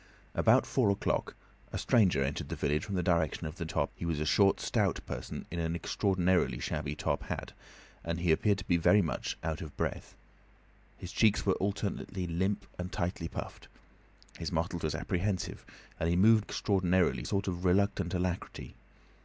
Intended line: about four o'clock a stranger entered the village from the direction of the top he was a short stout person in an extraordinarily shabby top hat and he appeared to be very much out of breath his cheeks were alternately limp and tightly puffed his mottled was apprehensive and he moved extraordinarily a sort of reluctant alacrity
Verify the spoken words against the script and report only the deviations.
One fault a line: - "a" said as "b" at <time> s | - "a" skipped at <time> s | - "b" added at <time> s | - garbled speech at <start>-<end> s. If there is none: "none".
none